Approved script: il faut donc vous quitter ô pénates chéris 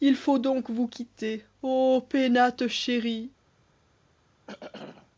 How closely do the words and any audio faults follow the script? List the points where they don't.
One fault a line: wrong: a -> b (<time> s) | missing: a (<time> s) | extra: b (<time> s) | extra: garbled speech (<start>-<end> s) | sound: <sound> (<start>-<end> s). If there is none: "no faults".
sound: throat clearing (4.5-5.1 s)